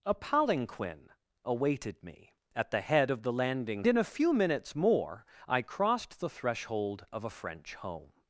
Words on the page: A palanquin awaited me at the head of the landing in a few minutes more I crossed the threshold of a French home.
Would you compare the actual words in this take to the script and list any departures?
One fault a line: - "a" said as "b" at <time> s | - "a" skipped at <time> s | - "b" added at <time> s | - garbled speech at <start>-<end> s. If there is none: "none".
none